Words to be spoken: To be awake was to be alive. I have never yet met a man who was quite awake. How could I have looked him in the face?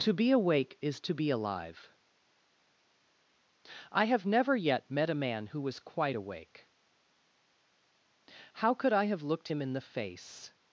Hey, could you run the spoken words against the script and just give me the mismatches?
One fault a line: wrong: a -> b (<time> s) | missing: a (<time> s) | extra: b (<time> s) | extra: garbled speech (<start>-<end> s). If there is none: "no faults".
wrong: was -> is (0.8 s)